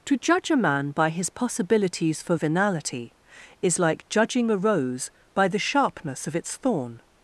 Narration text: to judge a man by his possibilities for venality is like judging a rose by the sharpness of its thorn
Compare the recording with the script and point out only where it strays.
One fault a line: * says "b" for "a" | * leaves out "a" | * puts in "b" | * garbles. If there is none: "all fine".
all fine